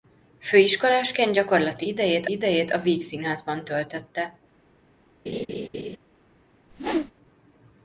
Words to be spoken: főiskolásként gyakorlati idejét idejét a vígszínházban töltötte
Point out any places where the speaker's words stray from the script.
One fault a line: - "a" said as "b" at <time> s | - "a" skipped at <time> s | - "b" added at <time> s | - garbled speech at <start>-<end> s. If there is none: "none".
none